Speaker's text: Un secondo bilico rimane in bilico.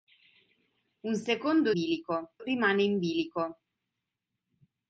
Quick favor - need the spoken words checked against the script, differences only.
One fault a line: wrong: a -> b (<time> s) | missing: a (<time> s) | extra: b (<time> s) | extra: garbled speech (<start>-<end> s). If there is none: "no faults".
no faults